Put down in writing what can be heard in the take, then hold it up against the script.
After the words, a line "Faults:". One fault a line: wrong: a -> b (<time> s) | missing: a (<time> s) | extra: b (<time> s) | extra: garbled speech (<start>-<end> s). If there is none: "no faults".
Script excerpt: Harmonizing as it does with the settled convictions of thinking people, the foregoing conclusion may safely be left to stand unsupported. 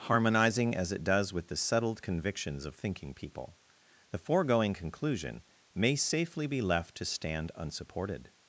Harmonizing as it does with the settled convictions of thinking people, the foregoing conclusion may safely be left to stand unsupported.
Faults:
no faults